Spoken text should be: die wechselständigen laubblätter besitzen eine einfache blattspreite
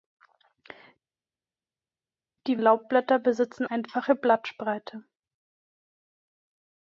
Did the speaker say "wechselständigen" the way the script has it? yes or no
no